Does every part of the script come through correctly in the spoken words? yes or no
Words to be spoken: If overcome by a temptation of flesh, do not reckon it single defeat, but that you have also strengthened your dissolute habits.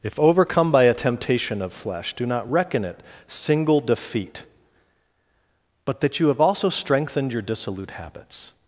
yes